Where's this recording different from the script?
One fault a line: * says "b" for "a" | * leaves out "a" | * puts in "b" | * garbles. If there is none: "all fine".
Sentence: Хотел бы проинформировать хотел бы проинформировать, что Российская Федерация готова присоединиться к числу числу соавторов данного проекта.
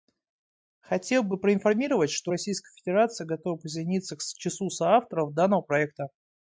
* leaves out "хотел бы проинформировать"
* leaves out "числу"